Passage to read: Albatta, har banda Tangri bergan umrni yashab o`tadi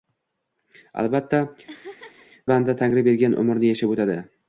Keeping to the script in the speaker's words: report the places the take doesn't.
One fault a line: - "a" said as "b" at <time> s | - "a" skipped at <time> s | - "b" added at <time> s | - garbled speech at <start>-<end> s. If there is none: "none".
- "har" skipped at 1.4 s